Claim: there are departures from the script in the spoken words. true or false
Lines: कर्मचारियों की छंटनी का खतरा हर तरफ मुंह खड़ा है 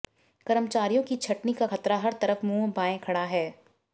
true